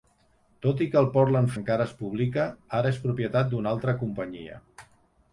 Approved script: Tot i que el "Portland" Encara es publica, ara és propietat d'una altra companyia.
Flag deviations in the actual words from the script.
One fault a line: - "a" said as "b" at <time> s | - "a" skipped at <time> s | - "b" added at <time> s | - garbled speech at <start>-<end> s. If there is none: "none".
none